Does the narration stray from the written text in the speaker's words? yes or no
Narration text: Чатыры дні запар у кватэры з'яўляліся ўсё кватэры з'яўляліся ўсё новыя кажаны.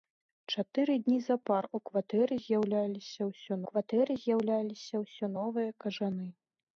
no